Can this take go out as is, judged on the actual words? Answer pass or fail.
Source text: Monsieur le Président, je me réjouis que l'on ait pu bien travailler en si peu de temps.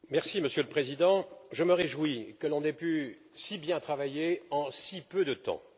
fail